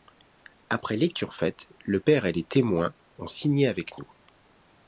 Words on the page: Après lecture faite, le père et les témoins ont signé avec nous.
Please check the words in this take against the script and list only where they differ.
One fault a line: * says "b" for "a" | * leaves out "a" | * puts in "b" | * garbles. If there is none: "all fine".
all fine